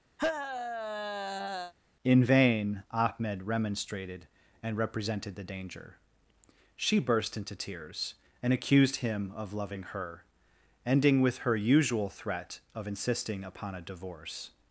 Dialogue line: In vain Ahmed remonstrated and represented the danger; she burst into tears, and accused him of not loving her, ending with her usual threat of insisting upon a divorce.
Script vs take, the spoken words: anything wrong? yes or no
yes